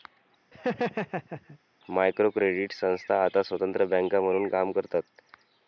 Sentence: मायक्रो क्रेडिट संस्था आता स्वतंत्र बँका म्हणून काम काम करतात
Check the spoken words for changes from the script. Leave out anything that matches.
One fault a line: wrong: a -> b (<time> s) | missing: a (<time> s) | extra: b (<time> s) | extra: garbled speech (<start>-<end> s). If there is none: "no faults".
missing: काम (4.7 s)